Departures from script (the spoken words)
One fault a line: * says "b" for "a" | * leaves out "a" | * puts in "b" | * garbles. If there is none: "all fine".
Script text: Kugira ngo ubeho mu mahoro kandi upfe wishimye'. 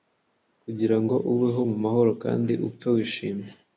all fine